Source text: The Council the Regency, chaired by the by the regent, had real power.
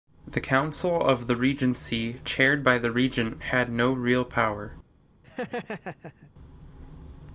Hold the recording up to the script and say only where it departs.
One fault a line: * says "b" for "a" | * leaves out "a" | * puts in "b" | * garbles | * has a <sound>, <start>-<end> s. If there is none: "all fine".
* puts in "of"
* leaves out "by the"
* puts in "no"
* has a laugh, 5.2-6.3 s